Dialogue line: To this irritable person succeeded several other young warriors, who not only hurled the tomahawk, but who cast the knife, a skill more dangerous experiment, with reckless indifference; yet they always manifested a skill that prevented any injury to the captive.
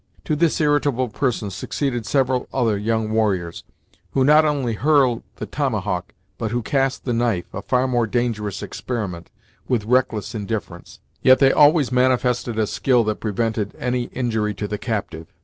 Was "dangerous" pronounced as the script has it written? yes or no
yes